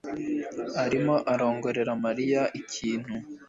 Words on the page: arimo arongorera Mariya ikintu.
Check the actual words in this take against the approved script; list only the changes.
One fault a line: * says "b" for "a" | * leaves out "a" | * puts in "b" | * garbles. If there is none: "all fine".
all fine